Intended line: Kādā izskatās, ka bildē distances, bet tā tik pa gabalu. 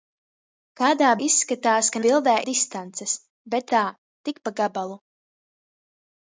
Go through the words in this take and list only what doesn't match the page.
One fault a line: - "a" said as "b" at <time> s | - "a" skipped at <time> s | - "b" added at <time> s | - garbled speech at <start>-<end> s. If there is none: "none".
none